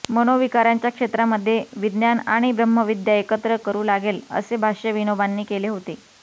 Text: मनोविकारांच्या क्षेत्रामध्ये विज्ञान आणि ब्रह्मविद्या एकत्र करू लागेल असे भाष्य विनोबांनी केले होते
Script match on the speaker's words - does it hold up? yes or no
yes